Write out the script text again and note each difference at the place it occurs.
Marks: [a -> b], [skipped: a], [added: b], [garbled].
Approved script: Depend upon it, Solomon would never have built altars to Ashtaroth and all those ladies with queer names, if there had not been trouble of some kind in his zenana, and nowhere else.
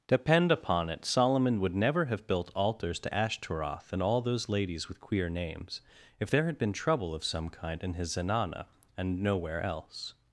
Depend upon it, Solomon would never have built altars to Ashtaroth and all those ladies with queer names, if there had [skipped: not] been trouble of some kind in his zenana, and nowhere else.